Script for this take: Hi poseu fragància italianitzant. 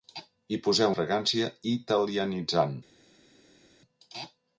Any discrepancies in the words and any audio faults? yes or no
no